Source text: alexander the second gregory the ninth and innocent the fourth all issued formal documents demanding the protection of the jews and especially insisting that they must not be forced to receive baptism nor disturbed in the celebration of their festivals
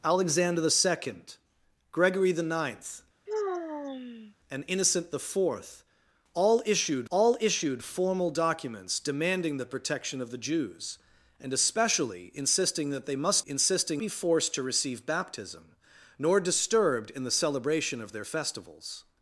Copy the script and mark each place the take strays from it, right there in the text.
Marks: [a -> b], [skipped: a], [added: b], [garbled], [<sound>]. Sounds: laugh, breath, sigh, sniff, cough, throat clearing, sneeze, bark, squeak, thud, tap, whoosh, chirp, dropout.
alexander the second gregory the ninth [sigh] and innocent the fourth all issued [added: all issued] formal documents demanding the protection of the jews and especially insisting that they must [not -> insisting] be forced to receive baptism nor disturbed in the celebration of their festivals